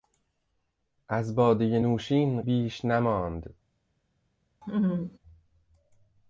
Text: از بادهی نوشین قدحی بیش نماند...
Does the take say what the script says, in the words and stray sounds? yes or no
no